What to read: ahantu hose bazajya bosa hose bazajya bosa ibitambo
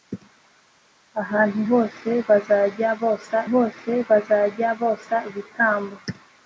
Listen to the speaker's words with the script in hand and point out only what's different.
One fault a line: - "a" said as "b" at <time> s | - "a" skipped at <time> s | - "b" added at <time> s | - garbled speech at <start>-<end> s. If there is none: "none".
none